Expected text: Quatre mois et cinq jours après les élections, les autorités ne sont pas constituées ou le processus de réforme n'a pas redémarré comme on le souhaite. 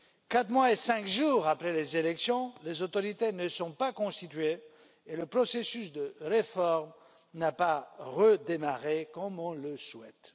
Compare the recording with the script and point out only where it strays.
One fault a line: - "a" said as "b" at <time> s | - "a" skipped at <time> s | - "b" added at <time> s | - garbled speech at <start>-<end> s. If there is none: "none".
- "ou" said as "et" at 5.0 s